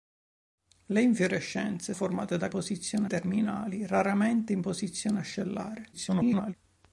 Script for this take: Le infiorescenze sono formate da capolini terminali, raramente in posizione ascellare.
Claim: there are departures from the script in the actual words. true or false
true